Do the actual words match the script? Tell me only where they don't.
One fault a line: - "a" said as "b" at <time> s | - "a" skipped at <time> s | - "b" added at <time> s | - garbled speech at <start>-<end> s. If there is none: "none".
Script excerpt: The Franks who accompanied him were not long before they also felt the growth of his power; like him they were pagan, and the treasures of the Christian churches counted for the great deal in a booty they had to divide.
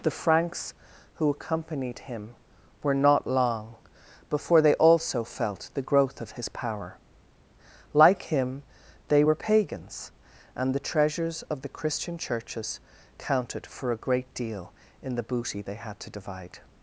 - "pagan" said as "pagans" at 9.3 s
- "the" said as "a" at 13.9 s
- "a" said as "the" at 15.2 s